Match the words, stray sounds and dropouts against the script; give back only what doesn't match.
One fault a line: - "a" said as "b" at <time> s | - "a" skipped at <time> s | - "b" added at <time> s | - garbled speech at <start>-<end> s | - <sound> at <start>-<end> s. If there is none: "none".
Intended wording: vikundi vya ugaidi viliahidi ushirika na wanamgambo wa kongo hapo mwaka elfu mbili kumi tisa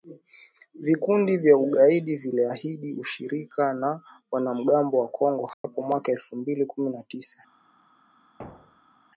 - dropout at 5.5-5.6 s
- "na" added at 6.9 s
- thud at 8.4-9.1 s